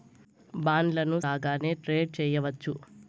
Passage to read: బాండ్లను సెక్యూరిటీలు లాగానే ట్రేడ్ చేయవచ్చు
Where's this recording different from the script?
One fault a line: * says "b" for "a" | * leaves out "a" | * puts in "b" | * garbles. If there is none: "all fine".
* leaves out "సెక్యూరిటీలు"